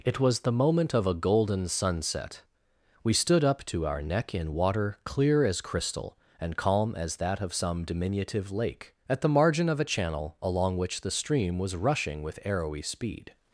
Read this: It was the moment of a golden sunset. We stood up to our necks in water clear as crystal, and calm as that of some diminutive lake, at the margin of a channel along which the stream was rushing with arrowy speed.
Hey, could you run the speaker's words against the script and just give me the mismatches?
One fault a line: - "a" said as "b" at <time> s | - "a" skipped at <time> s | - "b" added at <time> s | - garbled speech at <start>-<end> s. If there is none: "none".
- "necks" said as "neck" at 4.0 s